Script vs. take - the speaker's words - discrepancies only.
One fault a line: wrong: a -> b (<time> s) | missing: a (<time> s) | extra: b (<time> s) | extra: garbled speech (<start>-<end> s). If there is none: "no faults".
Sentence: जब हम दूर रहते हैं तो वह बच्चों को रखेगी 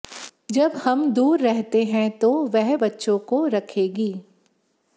no faults